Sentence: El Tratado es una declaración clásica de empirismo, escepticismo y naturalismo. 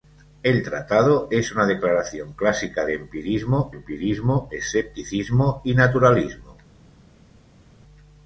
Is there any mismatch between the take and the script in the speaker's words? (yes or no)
yes